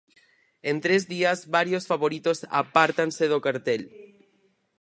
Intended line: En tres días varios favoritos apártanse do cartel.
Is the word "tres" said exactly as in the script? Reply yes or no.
yes